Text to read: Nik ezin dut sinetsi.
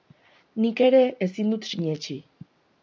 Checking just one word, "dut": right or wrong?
right